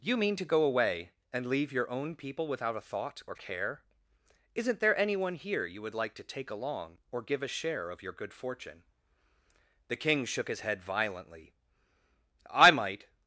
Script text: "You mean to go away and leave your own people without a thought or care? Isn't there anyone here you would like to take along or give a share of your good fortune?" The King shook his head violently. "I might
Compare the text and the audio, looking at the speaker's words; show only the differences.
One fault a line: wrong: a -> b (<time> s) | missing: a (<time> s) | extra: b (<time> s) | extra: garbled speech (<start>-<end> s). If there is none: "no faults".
no faults